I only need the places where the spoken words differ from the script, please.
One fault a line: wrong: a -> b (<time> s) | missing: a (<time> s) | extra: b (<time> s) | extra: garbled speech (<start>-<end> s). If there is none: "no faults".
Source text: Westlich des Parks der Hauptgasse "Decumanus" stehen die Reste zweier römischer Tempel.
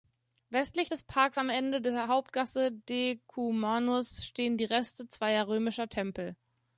extra: am Ende (1.4 s)